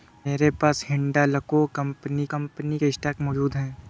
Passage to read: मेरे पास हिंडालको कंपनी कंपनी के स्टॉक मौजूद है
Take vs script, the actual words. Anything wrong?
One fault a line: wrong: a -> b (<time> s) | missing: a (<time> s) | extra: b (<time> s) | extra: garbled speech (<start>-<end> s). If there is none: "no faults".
no faults